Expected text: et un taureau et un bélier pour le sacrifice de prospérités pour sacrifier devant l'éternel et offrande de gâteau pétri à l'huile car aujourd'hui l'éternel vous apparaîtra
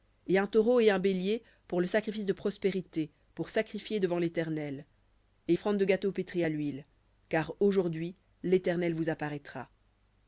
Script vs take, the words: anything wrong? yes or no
no